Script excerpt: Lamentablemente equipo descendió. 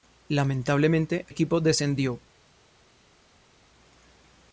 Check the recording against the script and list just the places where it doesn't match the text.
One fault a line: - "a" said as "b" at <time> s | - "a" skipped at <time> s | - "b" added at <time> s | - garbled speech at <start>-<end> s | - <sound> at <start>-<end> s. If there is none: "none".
none